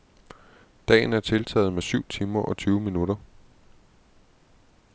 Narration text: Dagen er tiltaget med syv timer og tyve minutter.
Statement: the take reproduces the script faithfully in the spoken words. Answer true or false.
true